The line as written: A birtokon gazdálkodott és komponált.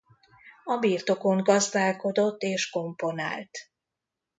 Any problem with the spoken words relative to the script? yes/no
no